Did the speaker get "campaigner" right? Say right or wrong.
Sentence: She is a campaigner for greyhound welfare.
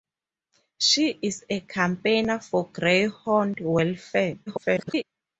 right